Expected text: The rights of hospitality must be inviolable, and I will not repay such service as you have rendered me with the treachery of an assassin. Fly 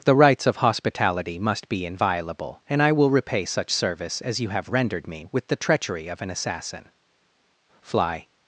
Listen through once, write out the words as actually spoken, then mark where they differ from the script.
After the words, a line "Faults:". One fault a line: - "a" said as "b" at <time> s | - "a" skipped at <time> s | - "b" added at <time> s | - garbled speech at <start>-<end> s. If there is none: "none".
The rights of hospitality must be inviolable, and I will repay such service as you have rendered me with the treachery of an assassin. Fly
Faults:
- "not" skipped at 3.1 s